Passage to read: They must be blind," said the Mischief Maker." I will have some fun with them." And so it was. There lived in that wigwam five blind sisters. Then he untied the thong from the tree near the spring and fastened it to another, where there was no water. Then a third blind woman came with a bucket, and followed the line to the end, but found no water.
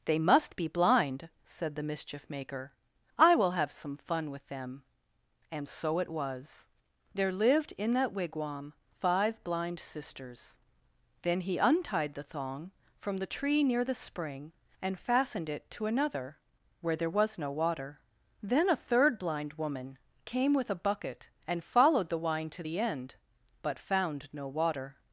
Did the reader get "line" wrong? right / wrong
wrong